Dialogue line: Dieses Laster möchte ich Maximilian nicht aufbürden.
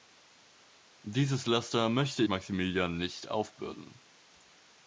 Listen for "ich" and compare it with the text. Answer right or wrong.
wrong